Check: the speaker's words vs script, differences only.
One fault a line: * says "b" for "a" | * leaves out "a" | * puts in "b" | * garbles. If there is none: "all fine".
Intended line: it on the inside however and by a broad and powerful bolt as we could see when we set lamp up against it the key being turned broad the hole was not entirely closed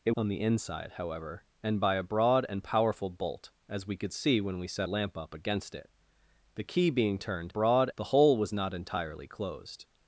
all fine